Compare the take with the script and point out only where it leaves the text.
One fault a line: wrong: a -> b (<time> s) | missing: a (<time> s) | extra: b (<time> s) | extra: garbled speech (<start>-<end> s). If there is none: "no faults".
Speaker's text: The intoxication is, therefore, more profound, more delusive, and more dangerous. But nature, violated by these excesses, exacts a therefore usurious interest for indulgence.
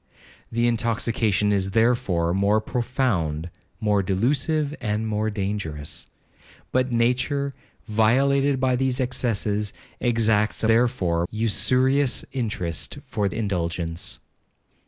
no faults